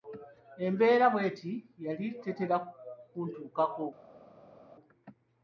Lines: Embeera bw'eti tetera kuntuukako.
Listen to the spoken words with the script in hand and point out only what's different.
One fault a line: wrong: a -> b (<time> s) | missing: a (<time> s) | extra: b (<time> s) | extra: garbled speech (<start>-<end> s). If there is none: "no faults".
extra: yali (1.9 s)